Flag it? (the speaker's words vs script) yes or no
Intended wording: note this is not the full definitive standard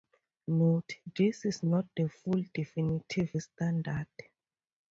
no